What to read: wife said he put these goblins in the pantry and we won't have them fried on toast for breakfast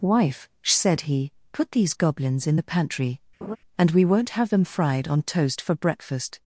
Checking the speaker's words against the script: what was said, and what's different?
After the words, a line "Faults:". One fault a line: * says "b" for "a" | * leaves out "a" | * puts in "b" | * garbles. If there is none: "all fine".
wife said he put these goblins in the pantry and we won't have them fried on toast for breakfast
Faults:
all fine